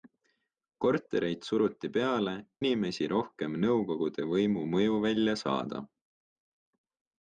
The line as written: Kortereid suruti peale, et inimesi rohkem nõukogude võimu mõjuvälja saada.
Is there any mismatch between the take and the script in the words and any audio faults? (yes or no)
yes